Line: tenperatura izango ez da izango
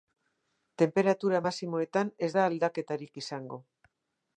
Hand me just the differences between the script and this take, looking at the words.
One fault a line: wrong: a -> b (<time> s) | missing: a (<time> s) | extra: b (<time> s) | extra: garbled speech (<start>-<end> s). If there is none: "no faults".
wrong: izango -> maximoetan (1.5 s)
extra: aldaketarik (2.5 s)